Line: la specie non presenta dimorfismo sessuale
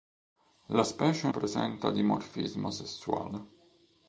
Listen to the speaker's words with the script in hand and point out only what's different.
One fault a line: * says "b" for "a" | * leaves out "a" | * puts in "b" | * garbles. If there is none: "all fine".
* leaves out "non"